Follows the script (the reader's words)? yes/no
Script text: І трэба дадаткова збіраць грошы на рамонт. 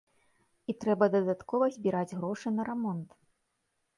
yes